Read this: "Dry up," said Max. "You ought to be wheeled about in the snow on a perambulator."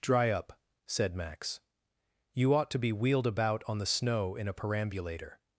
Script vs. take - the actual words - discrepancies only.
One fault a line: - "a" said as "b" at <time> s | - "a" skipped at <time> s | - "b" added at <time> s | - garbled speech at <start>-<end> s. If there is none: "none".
- "in" said as "on" at 3.7 s
- "on" said as "in" at 4.3 s